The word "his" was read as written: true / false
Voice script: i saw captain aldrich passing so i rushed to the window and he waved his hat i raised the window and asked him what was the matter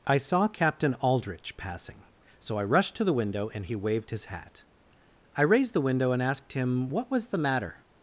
true